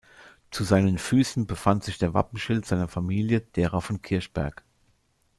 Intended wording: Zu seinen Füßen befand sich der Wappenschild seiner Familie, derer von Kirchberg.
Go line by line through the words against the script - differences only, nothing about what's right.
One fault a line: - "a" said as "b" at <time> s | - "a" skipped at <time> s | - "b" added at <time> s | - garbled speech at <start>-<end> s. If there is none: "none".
none